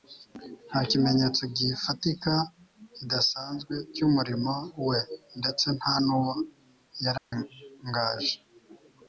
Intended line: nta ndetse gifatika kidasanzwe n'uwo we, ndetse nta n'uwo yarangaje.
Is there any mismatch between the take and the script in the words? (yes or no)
yes